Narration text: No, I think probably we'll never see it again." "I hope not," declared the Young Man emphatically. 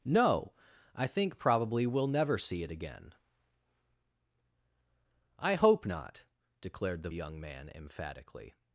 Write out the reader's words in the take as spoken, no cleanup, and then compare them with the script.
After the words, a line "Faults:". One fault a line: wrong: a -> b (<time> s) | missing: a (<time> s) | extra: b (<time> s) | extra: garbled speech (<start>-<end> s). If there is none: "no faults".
No, I think probably we'll never see it again." "I hope not," declared the Young Man emphatically.
Faults:
no faults